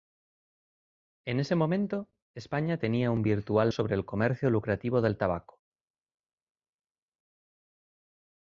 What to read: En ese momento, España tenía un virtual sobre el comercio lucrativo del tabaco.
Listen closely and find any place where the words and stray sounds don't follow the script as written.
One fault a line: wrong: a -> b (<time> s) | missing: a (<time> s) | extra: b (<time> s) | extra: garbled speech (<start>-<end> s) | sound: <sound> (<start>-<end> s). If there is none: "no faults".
no faults